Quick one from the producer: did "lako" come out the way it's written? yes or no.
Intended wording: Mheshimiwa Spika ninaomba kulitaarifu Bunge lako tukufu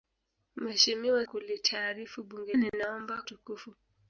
no